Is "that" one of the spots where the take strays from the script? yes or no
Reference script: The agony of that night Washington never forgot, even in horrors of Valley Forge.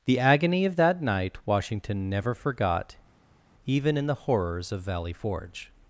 no